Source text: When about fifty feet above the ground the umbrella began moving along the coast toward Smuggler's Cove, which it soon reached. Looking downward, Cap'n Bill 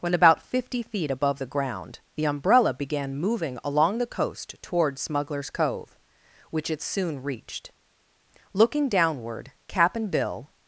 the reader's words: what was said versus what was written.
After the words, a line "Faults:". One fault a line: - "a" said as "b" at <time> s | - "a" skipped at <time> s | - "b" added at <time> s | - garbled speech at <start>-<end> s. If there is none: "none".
When about fifty feet above the ground the umbrella began moving along the coast toward Smuggler's Cove, which it soon reached. Looking downward, Cap'n Bill
Faults:
none